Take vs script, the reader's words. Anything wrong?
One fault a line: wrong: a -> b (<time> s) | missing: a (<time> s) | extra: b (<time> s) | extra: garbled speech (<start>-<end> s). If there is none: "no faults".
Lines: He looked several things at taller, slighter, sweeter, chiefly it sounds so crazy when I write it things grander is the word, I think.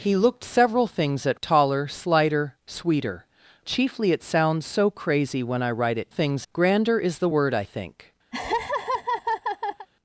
no faults